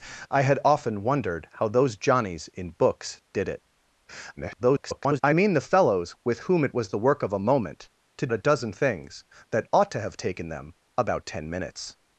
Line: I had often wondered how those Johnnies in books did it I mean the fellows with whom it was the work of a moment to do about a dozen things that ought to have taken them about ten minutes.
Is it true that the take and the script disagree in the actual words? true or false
true